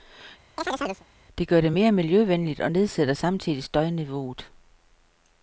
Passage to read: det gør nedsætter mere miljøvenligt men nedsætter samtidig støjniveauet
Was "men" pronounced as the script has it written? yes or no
no